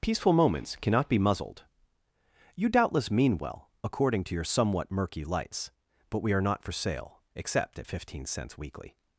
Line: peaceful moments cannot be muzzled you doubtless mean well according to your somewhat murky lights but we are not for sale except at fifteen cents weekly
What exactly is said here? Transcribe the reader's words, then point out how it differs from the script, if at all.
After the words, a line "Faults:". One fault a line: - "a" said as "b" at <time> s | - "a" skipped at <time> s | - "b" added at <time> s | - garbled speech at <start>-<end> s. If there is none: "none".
peaceful moments cannot be muzzled you doubtless mean well according to your somewhat murky lights but we are not for sale except at fifteen cents weekly
Faults:
none